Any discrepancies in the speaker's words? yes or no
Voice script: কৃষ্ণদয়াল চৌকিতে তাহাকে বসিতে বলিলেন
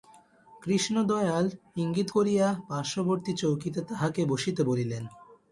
yes